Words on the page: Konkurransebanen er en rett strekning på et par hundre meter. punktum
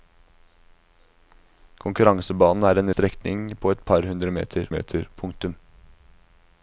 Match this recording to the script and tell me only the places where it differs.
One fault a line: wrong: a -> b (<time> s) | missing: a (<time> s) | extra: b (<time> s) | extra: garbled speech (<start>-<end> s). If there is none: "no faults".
missing: rett (2.9 s)
extra: meter (4.8 s)